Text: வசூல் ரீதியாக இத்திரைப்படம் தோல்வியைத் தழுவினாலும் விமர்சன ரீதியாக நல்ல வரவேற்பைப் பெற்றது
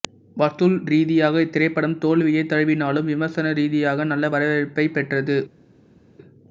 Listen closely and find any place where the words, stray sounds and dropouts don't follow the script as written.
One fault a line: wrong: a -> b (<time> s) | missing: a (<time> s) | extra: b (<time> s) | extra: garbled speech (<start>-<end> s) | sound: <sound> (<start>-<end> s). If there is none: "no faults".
no faults